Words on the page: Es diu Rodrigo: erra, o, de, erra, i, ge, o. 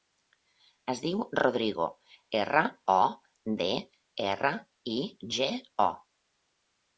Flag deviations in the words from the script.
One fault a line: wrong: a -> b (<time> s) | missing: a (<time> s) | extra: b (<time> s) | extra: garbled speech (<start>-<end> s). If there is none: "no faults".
no faults